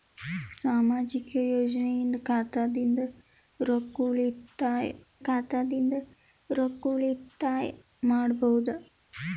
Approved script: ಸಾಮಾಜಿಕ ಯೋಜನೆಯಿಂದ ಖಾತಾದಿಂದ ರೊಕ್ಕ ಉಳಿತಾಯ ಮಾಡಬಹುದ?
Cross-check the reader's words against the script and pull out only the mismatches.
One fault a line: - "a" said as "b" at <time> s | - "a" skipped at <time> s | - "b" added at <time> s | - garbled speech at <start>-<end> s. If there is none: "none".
- "ಖಾತಾದಿಂದ ರೊಕ್ಕ ಉಳಿತಾಯ" added at 5.2 s